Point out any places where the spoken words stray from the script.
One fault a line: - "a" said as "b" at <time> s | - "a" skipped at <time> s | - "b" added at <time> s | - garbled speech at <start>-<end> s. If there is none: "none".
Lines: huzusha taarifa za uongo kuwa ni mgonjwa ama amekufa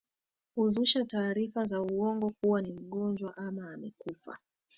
none